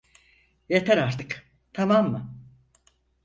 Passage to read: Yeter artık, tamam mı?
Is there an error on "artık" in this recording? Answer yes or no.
no